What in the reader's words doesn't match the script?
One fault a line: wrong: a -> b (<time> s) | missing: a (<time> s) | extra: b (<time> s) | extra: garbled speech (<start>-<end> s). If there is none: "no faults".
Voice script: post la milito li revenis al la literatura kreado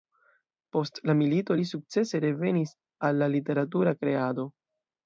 extra: sukcese (1.7 s)